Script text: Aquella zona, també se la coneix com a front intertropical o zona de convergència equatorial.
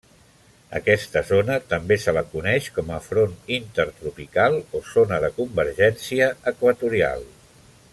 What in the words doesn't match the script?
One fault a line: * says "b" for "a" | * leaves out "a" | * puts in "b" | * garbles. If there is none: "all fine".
* says "Aquesta" for "Aquella"